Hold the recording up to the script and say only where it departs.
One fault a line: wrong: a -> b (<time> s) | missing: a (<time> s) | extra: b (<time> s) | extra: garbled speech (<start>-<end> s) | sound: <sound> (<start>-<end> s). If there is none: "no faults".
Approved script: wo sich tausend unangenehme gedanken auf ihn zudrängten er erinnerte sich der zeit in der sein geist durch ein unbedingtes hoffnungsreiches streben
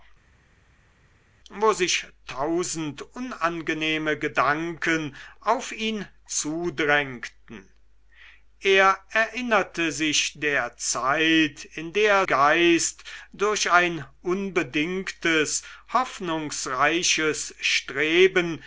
missing: sein (12.3 s)